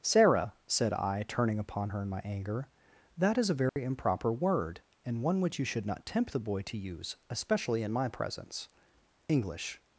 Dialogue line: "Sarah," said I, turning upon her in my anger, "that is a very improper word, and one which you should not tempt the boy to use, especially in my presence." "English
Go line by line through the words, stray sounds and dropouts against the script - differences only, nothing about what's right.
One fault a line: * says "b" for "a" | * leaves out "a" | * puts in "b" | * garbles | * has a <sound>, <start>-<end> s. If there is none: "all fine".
* has a dropout, 3.7-3.8 s